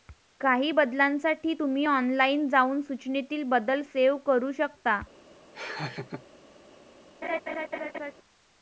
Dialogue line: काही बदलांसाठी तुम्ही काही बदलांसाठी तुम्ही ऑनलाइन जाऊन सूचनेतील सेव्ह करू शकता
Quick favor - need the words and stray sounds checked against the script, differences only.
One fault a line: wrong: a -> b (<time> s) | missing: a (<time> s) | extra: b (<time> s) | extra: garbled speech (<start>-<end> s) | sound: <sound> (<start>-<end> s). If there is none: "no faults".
missing: काही बदलांसाठी तुम्ही (1.8 s)
extra: बदल (3.5 s)
sound: laugh (5.5-6.3 s)
sound: laugh (7.2-8.1 s)